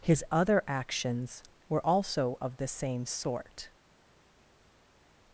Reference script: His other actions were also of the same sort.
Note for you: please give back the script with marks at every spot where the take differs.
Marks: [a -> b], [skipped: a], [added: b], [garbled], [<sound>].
His other actions were also of the same sort.